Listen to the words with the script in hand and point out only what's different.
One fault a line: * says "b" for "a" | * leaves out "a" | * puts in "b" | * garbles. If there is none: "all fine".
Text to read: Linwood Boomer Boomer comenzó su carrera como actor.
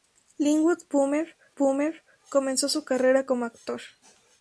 all fine